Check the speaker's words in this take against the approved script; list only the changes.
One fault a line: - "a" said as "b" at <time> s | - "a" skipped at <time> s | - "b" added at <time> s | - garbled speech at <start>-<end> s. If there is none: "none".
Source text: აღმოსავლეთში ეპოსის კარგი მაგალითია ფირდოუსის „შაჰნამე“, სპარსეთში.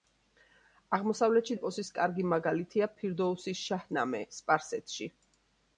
none